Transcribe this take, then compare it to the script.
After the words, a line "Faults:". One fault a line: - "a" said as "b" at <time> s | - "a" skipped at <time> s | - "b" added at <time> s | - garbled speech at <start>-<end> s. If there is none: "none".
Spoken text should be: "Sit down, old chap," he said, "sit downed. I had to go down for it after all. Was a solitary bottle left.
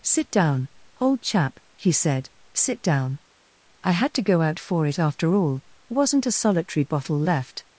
"Sit down, old chap," he said, "sit down. I had to go out for it after all. Wasn't a solitary bottle left.
Faults:
- "downed" said as "down" at 2.8 s
- "down" said as "out" at 4.4 s
- "Was" said as "Wasn't" at 5.9 s